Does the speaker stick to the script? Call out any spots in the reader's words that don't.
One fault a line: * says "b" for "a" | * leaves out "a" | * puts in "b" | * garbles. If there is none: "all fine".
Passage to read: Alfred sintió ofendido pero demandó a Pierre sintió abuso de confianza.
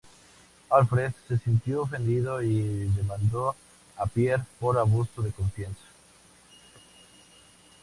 * puts in "se"
* says "y" for "pero"
* says "por" for "sintió"